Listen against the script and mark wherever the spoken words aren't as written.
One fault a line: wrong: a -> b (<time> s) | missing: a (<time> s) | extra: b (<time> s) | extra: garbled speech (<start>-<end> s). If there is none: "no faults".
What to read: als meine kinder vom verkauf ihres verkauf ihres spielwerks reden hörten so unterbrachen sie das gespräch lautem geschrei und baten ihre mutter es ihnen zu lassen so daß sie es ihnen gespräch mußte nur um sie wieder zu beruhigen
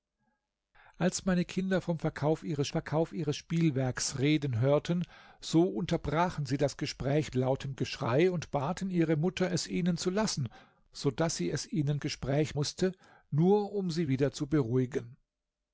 no faults